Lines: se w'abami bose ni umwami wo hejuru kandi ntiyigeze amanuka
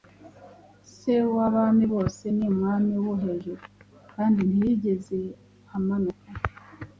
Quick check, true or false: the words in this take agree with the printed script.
true